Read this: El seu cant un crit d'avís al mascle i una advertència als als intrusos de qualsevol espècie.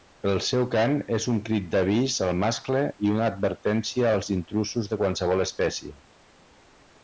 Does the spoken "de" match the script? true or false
true